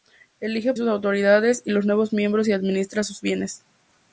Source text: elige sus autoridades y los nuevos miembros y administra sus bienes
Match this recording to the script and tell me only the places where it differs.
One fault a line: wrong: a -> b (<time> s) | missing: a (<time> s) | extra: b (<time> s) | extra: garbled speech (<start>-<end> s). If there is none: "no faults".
no faults